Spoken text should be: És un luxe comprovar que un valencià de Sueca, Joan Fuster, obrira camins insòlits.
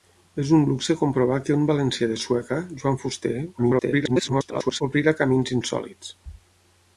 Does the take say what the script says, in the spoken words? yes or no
no